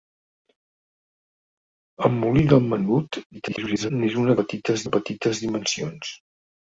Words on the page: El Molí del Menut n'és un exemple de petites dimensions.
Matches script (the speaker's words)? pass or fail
fail